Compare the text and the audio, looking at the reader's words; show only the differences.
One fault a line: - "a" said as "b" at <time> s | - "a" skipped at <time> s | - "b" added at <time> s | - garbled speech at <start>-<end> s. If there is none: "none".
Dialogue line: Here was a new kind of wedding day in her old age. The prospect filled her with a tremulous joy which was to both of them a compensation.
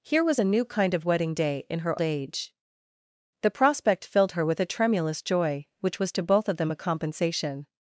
- "old" skipped at 2.0 s